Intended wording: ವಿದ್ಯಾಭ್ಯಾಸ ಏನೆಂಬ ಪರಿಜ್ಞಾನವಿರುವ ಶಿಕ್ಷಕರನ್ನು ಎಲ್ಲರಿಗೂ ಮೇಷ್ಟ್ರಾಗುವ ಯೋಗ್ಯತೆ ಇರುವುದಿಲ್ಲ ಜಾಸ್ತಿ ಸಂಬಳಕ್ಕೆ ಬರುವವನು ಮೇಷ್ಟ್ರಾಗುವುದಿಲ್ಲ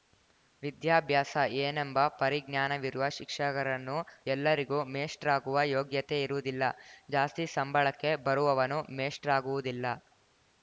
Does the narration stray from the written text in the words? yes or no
no